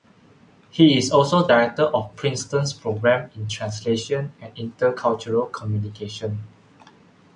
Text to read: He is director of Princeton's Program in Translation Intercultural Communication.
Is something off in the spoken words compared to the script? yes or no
yes